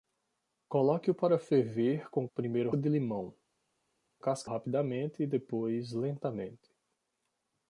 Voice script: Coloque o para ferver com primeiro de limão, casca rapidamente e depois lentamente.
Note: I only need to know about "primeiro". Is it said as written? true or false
true